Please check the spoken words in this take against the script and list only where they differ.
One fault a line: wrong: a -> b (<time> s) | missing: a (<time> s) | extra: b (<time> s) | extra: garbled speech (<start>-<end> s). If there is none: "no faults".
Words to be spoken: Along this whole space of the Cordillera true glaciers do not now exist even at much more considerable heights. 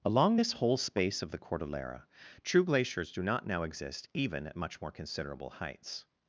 no faults